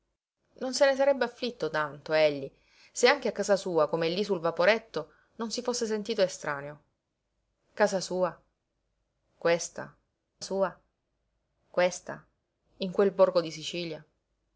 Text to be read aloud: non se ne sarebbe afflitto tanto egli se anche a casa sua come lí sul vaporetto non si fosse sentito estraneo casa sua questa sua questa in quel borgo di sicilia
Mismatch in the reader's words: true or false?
false